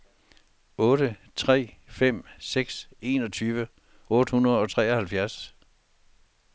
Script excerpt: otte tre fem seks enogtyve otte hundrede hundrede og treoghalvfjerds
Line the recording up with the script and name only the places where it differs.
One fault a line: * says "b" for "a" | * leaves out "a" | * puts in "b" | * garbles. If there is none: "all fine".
* leaves out "hundrede"